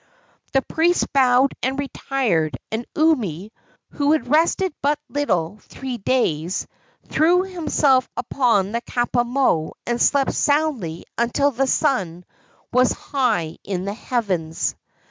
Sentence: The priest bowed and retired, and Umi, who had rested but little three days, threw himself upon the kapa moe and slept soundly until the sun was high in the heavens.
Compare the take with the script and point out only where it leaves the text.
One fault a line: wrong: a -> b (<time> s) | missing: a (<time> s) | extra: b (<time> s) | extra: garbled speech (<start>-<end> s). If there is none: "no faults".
no faults